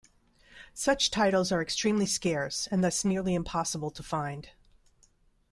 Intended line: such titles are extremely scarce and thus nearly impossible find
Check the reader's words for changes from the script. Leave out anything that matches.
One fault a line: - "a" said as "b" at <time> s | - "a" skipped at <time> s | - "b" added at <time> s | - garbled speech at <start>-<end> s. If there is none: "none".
- "to" added at 3.9 s